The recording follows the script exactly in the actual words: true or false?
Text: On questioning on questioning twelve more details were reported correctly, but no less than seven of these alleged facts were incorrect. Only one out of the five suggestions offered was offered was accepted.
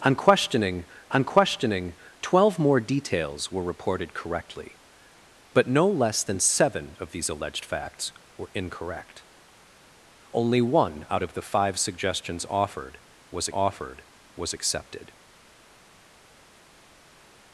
true